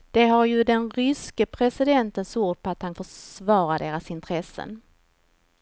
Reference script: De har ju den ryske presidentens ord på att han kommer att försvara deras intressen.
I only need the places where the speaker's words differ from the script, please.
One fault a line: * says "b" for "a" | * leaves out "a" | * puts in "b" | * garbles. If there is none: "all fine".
* leaves out "kommer att"